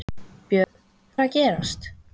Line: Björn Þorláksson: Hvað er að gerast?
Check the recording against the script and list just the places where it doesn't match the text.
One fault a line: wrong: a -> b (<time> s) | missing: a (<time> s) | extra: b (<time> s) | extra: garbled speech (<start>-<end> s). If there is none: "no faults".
missing: Þorláksson Hvað (0.8 s)